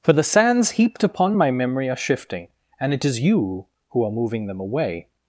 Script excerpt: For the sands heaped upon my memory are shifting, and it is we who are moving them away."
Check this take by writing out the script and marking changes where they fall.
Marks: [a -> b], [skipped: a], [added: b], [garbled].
For the sands heaped upon my memory are shifting, and it is [we -> you] who are moving them away."